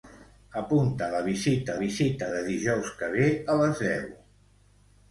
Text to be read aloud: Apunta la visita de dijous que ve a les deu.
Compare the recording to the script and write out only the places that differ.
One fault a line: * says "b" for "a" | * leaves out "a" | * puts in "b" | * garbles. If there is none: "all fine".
* puts in "visita"